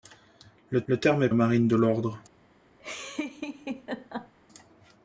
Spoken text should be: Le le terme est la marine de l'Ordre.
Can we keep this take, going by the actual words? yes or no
yes